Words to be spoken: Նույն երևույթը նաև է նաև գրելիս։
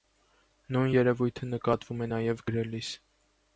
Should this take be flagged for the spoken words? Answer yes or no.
yes